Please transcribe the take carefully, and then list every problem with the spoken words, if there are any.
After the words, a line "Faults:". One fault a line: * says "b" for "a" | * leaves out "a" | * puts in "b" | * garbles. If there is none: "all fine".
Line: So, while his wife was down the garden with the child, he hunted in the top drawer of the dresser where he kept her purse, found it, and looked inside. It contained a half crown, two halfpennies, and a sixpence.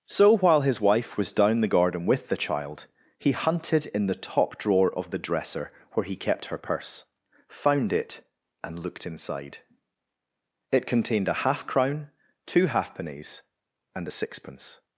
So, while his wife was down the garden with the child, he hunted in the top drawer of the dresser where he kept her purse, found it, and looked inside. It contained a half crown, two halfpennies, and a sixpence.
Faults:
all fine